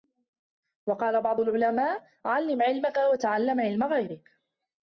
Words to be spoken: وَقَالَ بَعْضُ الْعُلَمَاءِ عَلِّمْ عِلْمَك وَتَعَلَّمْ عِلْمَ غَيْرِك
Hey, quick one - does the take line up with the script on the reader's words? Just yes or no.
yes